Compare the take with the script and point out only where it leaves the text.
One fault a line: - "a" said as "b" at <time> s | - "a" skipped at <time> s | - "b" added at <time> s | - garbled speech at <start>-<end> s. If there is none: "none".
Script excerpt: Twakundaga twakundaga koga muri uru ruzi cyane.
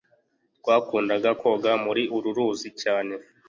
- "twakundaga" skipped at 1.3 s